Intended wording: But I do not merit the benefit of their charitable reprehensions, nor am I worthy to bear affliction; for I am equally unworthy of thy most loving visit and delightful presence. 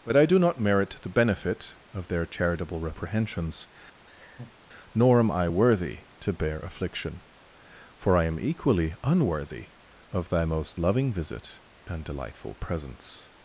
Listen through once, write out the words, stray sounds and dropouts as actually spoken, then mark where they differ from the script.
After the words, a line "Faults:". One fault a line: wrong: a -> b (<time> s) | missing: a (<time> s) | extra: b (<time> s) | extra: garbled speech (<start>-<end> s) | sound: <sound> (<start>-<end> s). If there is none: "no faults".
But I do not merit the benefit of their charitable reprehensions, nor am I worthy to bear affliction; for I am equally unworthy of thy most loving visit and delightful presence.
Faults:
sound: laugh (4.0-4.6 s)